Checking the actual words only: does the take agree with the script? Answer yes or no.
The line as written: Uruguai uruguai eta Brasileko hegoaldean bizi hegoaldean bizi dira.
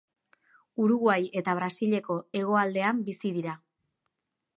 no